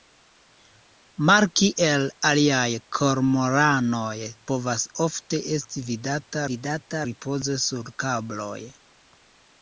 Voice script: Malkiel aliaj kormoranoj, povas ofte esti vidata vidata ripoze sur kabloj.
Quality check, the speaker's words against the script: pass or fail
pass